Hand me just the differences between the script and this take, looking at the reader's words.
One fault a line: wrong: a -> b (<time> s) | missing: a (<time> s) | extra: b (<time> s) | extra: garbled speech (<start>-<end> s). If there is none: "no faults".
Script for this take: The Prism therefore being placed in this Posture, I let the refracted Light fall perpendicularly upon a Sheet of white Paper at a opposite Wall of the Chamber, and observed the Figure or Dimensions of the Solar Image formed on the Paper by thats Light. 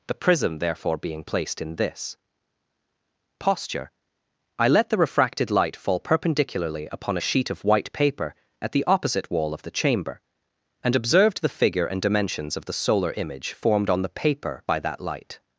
wrong: a -> the (8.7 s)
wrong: or -> and (11.9 s)
wrong: thats -> that (14.8 s)